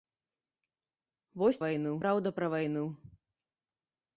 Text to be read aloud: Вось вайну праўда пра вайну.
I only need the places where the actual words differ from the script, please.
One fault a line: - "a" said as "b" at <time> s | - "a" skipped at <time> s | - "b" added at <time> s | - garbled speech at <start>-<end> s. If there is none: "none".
none